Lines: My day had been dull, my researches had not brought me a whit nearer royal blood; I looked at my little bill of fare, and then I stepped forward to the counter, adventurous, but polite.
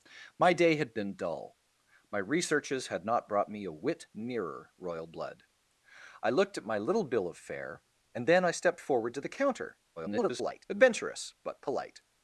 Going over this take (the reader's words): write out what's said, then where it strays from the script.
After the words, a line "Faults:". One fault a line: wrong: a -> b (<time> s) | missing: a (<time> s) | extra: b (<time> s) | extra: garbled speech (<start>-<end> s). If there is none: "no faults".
My day had been dull, my researches had not brought me a whit nearer royal blood; I looked at my little bill of fare, and then I stepped forward to the counter, [garbled] adventurous, but polite.
Faults:
extra: garbled speech (10.0-10.7 s)